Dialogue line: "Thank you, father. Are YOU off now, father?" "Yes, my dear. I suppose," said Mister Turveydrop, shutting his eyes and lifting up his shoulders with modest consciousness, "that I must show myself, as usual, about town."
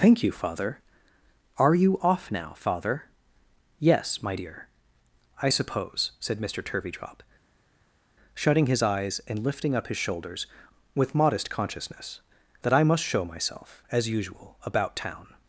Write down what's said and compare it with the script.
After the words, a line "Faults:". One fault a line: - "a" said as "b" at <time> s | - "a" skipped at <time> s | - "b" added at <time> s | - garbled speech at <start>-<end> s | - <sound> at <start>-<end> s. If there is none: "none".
"Thank you, father. Are YOU off now, father?" "Yes, my dear. I suppose," said Mister Turveydrop, shutting his eyes and lifting up his shoulders with modest consciousness, "that I must show myself, as usual, about town."
Faults:
none